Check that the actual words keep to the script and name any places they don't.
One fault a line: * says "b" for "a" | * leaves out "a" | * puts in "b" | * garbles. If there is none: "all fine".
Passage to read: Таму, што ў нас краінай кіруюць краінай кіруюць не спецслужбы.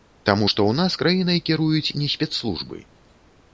* leaves out "краінай кіруюць"